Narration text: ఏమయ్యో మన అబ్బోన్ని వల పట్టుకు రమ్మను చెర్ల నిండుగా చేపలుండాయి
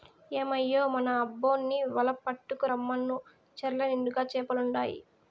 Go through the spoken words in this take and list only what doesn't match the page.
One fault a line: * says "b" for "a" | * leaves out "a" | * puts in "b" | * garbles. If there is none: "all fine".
all fine